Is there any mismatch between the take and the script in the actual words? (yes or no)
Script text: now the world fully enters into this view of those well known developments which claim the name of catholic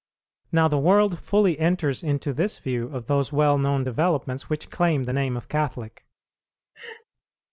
no